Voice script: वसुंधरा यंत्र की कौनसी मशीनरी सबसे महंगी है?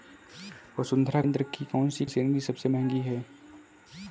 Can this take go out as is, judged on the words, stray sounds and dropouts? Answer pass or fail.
pass